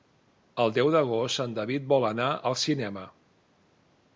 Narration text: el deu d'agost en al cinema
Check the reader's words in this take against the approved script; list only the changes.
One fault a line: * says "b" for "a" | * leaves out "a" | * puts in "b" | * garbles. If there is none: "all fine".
* puts in "david vol anar"